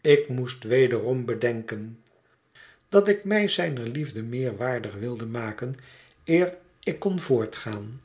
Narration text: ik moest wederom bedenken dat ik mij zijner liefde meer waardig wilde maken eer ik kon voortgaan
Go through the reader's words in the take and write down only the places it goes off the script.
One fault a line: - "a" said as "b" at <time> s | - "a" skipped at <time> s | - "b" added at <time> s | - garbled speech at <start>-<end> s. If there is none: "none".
none